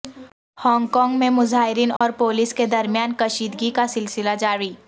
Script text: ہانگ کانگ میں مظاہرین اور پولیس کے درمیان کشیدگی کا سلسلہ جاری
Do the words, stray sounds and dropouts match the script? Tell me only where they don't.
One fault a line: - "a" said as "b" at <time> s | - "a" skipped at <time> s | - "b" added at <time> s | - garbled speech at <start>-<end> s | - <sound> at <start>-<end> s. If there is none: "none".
- dropout at 2.0-2.0 s